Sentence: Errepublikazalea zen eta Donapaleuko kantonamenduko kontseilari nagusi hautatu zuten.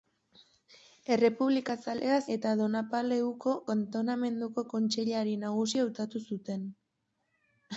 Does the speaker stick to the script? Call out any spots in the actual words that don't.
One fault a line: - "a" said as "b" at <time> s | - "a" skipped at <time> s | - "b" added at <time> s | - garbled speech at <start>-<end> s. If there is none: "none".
- "zen" skipped at 2.1 s